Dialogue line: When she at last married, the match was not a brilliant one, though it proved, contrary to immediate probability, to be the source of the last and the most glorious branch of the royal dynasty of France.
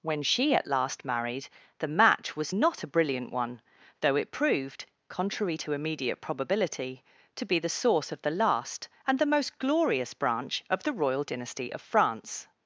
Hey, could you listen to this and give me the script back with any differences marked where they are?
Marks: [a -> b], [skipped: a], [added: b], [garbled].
When she at last married, the match was not a brilliant one, though it proved, contrary to immediate probability, to be the source of the last and the most glorious branch of the royal dynasty of France.